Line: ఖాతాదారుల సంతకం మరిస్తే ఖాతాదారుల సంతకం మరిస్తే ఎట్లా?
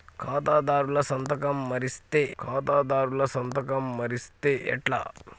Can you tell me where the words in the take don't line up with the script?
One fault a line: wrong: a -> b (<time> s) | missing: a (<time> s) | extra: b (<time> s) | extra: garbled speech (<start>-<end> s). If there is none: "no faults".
no faults